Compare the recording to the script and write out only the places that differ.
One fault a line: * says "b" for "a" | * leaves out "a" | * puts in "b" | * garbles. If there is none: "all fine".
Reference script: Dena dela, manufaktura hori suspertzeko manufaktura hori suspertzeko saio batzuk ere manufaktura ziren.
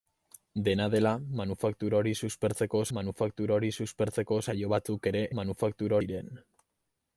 all fine